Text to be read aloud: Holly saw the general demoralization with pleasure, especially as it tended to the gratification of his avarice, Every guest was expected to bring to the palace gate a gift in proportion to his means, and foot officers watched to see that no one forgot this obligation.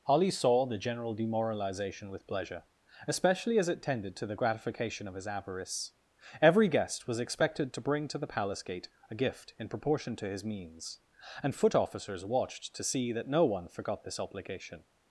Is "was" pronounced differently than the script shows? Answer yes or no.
no